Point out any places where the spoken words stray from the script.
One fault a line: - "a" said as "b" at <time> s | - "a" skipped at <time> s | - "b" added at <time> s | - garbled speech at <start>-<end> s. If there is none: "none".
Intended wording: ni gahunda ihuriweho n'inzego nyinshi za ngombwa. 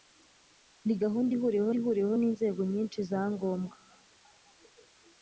- "ihuriweho" added at 1.8 s